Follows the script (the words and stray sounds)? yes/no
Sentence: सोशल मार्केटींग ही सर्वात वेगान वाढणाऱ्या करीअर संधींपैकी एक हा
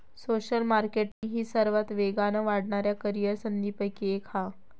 no